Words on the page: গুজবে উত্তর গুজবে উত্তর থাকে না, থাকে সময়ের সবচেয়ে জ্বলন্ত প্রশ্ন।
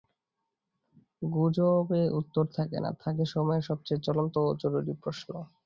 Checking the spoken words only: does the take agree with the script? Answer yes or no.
no